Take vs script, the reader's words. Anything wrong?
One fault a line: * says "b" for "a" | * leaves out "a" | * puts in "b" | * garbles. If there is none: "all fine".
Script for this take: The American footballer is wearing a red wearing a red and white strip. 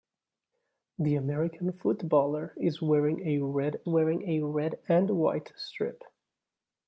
all fine